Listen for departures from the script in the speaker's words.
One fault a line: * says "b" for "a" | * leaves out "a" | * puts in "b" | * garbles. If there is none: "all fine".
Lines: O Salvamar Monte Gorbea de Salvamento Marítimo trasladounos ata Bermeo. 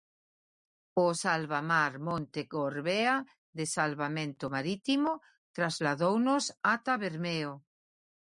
all fine